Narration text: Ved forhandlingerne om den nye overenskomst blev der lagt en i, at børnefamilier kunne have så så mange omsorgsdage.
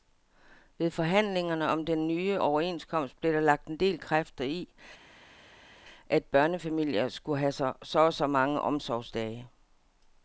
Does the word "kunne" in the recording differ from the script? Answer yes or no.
yes